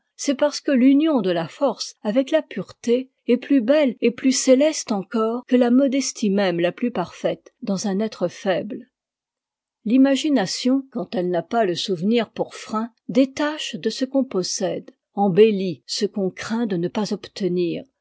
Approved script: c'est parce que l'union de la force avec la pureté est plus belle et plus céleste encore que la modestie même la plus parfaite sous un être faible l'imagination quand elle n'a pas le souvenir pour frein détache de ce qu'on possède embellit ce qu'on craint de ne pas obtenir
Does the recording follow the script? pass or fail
fail